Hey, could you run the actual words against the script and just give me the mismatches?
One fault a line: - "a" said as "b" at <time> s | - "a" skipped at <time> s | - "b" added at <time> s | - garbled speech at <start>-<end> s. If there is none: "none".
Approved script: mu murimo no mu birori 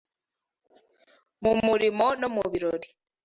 none